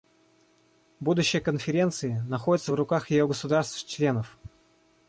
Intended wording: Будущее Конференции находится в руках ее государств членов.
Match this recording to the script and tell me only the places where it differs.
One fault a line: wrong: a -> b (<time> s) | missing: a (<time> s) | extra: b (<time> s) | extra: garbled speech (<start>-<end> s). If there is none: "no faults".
no faults